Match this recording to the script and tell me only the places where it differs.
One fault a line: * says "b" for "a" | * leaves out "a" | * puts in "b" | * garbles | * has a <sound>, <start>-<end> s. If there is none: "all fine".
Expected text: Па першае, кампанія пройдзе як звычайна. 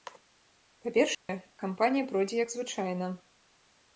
* has a dropout, 1.1-1.3 s